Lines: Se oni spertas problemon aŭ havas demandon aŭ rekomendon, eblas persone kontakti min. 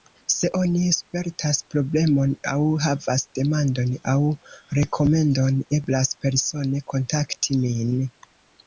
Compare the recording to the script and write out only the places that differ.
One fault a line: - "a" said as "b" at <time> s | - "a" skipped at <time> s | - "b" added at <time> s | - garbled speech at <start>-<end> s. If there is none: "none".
none